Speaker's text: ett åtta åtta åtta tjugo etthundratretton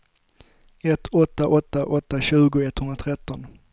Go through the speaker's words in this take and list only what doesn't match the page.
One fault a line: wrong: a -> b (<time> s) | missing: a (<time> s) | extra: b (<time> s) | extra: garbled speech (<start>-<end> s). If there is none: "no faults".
no faults